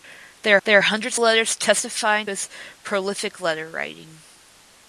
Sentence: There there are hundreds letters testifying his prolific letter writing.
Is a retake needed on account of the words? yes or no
no